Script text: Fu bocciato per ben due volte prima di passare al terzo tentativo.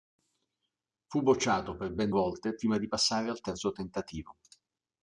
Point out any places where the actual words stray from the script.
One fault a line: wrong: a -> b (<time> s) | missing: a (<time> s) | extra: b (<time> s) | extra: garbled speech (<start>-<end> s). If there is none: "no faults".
missing: due (2.1 s)